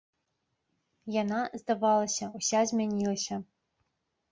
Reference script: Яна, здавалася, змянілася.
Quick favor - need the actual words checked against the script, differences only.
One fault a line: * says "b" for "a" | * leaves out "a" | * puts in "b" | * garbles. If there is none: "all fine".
* puts in "уся"